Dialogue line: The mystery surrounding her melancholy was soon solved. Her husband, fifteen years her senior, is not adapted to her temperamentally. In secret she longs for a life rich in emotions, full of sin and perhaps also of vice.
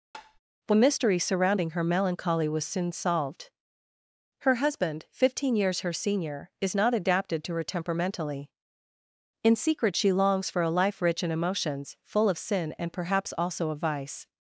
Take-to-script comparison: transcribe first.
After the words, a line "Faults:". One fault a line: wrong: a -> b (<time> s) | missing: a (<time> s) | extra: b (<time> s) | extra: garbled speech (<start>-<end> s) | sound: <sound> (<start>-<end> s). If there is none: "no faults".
The mystery surrounding her melancholy was soon solved. Her husband, fifteen years her senior, is not adapted to her temperamentally. In secret she longs for a life rich in emotions, full of sin and perhaps also of vice.
Faults:
sound: tap (0.1-0.4 s)